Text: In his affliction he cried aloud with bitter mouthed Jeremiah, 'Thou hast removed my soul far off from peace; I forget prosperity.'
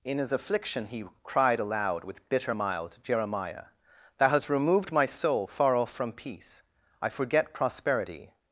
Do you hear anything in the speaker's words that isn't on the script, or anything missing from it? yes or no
yes